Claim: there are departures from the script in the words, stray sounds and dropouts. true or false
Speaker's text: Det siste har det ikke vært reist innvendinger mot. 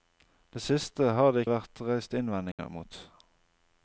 true